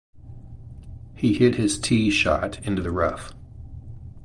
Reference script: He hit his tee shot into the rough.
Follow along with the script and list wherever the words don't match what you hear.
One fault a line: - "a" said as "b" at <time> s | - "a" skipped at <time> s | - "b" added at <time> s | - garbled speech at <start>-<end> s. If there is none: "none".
none